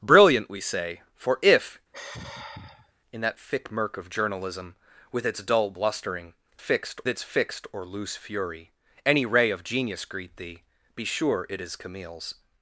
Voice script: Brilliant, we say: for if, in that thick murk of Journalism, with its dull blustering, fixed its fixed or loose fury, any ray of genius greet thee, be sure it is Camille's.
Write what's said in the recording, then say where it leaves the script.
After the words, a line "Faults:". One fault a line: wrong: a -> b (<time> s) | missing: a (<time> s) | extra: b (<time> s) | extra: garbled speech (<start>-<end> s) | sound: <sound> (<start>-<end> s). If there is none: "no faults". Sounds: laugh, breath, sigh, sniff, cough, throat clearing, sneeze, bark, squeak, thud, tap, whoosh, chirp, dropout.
Brilliant, we say: for if, in that thick murk of Journalism, with its dull blustering, fixed its fixed or loose fury, any ray of genius greet thee, be sure it is Camille's.
Faults:
sound: sigh (1.9-2.9 s)